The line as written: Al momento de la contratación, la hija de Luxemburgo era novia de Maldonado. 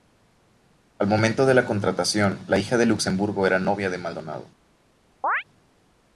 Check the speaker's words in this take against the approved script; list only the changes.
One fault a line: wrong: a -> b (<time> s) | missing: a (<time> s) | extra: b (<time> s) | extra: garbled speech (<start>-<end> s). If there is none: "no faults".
no faults